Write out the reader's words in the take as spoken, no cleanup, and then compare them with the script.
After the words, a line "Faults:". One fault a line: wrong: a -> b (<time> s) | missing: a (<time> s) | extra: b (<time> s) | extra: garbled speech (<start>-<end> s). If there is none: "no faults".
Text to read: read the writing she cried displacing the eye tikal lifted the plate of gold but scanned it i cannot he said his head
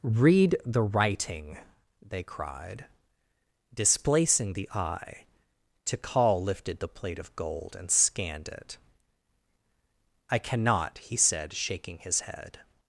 read the writing they cried displacing the eye tikal lifted the plate of gold and scanned it i cannot he said shaking his head
Faults:
wrong: she -> they (2.0 s)
wrong: but -> and (7.8 s)
extra: shaking (11.5 s)